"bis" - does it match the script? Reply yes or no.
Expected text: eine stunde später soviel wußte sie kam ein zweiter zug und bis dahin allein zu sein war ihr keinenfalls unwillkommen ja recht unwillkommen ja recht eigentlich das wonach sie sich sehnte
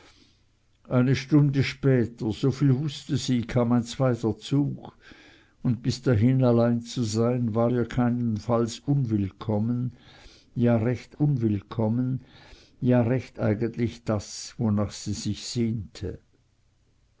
yes